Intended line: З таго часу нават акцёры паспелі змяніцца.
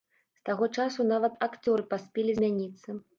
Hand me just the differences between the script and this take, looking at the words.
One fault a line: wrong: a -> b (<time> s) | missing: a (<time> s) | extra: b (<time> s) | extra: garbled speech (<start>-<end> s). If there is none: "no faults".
no faults